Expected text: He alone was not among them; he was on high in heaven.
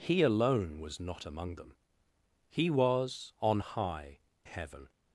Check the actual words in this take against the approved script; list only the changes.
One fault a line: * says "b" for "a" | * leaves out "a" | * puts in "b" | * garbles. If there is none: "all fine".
* leaves out "in"